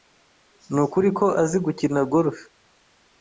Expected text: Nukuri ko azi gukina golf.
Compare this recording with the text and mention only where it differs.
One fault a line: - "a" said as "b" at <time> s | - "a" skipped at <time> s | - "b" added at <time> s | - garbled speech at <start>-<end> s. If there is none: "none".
none